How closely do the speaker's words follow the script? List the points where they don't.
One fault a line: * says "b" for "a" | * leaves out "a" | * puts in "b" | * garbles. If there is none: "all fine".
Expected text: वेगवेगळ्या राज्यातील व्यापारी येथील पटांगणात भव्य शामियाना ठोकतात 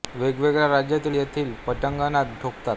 * leaves out "व्यापारी"
* leaves out "भव्य शामियाना"